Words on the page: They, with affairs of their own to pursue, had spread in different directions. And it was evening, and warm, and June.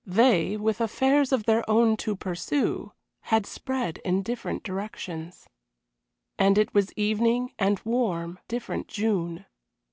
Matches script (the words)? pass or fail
fail